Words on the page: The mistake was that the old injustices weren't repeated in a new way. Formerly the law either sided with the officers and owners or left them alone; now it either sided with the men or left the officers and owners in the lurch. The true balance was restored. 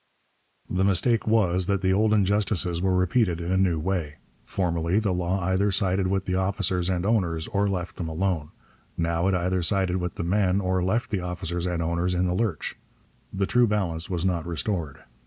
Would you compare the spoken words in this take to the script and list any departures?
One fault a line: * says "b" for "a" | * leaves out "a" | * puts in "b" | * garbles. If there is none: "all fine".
* says "were" for "weren't"
* puts in "not"